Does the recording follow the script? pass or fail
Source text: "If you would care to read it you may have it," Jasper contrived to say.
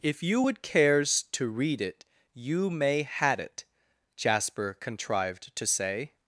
fail